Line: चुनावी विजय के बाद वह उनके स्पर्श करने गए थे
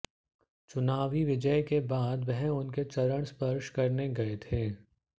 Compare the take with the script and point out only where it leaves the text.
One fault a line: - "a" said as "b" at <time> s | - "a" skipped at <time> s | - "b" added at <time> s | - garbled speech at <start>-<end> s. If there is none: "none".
- "चरण" added at 2.8 s